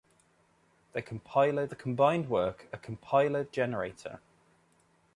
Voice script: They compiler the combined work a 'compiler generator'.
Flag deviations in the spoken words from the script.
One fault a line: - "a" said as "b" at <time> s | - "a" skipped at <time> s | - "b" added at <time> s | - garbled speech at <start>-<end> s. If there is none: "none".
none